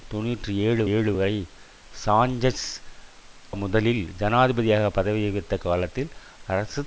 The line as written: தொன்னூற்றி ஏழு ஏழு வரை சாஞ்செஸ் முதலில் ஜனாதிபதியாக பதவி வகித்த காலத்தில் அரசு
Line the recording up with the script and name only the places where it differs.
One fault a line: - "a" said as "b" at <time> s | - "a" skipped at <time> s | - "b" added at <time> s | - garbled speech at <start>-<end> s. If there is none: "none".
none